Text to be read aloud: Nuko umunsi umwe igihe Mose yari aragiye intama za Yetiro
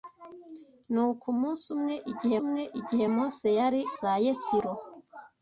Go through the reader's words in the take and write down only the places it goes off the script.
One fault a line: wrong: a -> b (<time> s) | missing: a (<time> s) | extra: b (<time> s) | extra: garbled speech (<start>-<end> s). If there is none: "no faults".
extra: umwe igihe (2.4 s)
missing: aragiye intama (3.8 s)